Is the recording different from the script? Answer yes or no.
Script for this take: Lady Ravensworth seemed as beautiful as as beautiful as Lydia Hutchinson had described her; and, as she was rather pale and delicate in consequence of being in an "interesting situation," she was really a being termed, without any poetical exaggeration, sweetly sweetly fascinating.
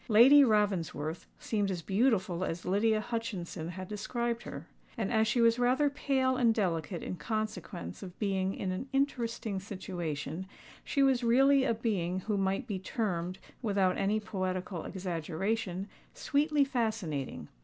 yes